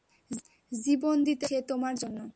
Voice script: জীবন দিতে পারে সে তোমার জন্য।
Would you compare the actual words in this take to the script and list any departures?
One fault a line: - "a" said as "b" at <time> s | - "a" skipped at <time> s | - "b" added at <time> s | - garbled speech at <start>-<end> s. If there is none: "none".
none